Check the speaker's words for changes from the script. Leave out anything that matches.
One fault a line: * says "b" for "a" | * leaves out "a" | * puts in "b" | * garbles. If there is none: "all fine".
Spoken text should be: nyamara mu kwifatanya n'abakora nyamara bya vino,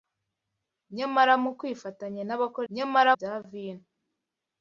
all fine